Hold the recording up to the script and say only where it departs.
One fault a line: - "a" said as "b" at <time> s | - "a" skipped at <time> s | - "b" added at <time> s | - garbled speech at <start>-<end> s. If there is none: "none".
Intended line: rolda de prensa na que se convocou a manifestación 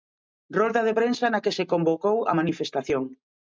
none